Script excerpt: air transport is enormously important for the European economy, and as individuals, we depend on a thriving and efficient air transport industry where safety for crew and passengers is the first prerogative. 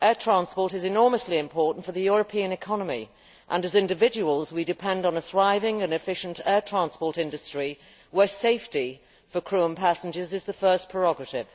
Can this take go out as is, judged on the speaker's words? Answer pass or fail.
pass